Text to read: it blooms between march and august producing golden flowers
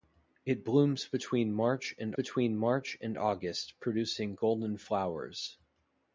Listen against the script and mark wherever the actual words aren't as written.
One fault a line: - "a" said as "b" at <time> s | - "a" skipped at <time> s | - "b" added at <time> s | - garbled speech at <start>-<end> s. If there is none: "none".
- "between march and" added at 2.1 s